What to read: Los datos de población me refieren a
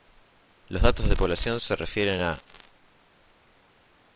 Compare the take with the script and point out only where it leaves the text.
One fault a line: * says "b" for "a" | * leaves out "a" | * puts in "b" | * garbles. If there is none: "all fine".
* says "se" for "me"